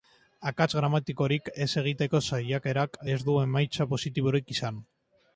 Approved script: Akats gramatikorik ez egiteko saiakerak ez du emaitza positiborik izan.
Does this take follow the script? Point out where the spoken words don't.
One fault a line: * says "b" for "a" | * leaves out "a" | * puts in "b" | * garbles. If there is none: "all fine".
all fine